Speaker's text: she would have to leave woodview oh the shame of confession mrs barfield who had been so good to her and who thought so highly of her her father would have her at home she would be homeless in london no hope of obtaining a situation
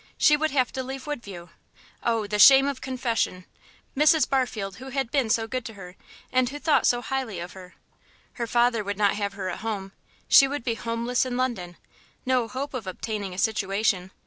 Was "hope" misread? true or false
false